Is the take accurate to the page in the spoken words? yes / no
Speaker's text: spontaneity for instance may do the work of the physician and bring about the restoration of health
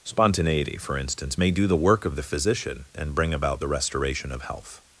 yes